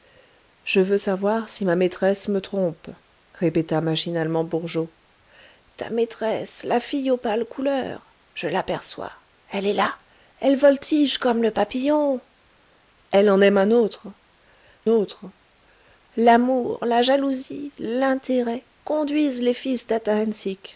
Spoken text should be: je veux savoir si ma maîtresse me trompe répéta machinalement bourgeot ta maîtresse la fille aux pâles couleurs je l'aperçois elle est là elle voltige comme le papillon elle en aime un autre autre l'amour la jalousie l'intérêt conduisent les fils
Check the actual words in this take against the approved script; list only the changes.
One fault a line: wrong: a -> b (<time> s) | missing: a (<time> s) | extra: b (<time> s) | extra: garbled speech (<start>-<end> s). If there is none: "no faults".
no faults